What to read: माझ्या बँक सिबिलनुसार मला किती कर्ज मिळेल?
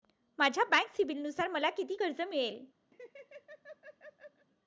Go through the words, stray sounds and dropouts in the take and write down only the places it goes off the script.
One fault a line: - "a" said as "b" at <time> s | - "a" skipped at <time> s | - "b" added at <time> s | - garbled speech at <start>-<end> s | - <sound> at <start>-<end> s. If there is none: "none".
- laugh at 2.9-4.5 s